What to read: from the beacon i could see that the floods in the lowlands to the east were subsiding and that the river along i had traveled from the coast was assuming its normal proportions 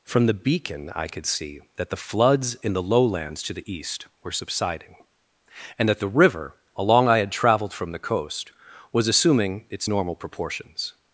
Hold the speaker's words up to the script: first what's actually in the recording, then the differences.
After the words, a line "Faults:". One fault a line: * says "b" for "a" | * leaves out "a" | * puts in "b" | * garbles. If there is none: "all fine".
from the beacon i could see that the floods in the lowlands to the east were subsiding and that the river along i had traveled from the coast was assuming its normal proportions
Faults:
all fine